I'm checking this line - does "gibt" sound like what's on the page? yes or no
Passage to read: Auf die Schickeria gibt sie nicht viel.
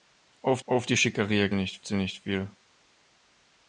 no